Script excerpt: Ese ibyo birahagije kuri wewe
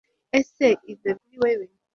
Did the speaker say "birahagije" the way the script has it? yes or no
no